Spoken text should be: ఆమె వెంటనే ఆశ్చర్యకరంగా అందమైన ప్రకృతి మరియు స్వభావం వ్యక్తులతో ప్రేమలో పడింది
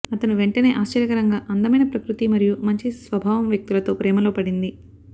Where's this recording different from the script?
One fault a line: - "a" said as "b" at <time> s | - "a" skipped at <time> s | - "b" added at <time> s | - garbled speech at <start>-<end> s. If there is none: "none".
- "ఆమె" said as "అతను" at 0.1 s
- "మంచి" added at 2.6 s